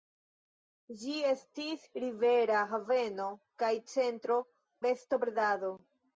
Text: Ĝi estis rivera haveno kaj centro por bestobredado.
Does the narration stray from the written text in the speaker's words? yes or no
yes